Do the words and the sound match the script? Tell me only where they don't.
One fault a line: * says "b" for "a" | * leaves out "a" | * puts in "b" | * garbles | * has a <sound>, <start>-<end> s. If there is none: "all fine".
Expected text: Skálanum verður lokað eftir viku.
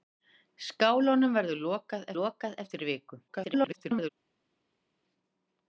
* puts in "lokað"
* garbles